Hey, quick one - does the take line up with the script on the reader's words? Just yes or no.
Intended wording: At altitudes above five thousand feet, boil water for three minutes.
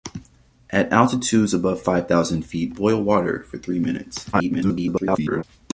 no